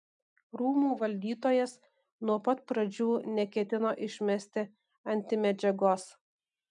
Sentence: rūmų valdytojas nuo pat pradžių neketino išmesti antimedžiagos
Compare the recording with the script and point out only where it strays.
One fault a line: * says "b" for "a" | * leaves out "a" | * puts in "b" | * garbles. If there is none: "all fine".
all fine